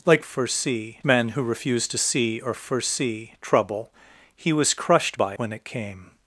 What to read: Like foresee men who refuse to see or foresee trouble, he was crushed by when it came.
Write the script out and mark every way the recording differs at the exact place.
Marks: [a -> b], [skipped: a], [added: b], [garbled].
Like foresee men who refuse to see or foresee trouble, he was crushed by when it came.